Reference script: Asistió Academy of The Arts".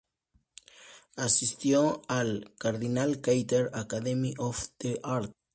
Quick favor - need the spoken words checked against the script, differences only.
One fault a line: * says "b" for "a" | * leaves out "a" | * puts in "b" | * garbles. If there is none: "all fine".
* puts in "al Cardinal Carter"